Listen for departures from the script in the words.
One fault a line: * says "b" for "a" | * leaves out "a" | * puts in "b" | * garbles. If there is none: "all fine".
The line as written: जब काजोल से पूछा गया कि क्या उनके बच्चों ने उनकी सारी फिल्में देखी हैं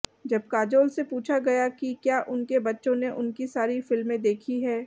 all fine